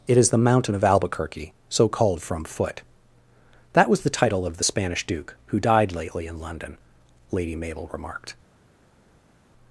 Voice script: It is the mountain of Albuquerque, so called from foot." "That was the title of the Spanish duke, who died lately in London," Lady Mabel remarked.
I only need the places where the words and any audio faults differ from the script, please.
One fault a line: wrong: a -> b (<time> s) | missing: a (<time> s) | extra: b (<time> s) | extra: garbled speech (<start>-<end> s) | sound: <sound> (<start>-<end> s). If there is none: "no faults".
no faults